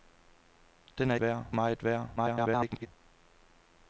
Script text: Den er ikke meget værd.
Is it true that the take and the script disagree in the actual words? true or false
true